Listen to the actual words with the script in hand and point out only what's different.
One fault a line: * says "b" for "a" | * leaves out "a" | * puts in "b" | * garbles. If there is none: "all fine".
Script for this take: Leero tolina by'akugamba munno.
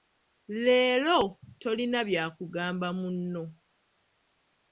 all fine